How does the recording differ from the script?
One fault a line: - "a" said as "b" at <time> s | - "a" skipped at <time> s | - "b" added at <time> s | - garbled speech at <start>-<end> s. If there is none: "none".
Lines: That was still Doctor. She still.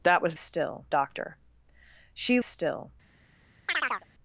none